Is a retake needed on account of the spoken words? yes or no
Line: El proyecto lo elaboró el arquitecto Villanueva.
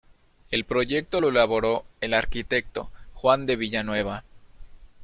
yes